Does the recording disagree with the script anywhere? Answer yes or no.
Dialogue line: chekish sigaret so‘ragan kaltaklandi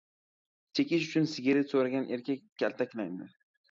yes